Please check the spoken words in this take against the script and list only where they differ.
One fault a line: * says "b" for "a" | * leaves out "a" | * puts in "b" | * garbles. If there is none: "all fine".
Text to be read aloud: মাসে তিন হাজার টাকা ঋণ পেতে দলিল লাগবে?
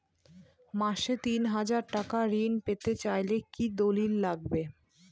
* puts in "চাইলে কি"